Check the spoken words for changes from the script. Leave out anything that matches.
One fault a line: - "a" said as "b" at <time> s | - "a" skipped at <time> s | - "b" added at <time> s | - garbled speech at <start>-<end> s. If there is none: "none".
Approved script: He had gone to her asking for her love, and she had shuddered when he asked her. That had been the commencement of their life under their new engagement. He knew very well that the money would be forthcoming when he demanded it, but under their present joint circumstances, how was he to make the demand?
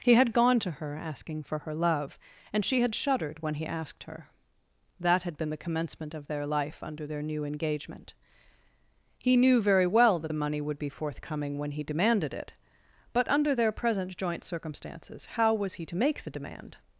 none